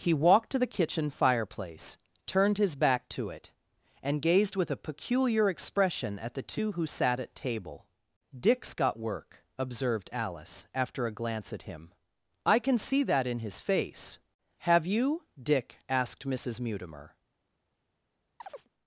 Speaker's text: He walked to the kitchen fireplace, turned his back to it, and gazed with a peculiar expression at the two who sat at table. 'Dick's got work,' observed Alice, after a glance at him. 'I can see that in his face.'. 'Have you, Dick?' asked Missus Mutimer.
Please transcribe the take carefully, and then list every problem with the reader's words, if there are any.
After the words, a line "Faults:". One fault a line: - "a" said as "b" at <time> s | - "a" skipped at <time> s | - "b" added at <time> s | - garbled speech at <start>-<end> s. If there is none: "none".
He walked to the kitchen fireplace, turned his back to it, and gazed with a peculiar expression at the two who sat at table. 'Dick's got work,' observed Alice, after a glance at him. 'I can see that in his face.'. 'Have you, Dick?' asked Missus Mutimer.
Faults:
none